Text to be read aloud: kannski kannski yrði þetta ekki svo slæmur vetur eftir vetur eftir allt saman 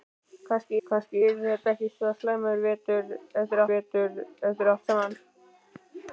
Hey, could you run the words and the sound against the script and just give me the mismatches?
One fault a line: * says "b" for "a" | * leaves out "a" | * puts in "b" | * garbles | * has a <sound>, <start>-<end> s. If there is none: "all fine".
all fine